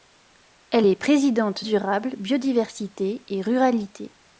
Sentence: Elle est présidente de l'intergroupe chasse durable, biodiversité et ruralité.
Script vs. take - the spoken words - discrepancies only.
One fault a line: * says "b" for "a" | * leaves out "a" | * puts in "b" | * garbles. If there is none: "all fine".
* leaves out "de l'intergroupe chasse"